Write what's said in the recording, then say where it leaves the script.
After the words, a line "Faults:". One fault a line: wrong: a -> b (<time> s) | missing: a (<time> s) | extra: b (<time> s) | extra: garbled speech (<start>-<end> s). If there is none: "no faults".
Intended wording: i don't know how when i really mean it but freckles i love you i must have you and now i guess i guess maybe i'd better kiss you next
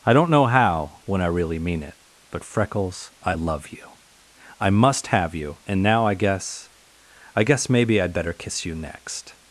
i don't know how when i really mean it but freckles i love you i must have you and now i guess i guess maybe i'd better kiss you next
Faults:
no faults